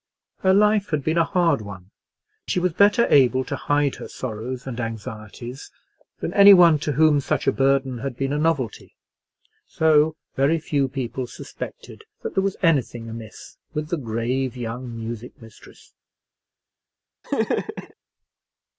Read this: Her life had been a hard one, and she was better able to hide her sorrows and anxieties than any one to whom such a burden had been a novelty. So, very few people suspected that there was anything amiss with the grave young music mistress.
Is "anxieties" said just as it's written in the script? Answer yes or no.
yes